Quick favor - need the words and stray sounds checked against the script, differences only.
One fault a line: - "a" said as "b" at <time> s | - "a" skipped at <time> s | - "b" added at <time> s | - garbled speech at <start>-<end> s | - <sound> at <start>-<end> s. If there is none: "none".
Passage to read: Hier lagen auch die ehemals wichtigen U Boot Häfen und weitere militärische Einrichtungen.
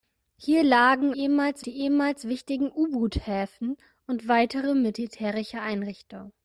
- "auch" said as "ehemals" at 1.2 s